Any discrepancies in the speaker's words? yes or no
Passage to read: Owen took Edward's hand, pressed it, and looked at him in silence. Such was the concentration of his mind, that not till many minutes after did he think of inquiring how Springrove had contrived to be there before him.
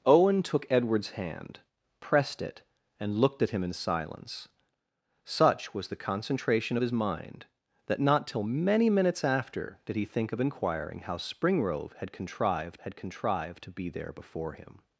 yes